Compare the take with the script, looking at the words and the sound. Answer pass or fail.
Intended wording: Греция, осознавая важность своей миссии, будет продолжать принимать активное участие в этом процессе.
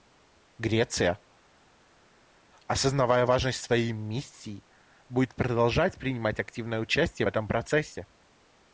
pass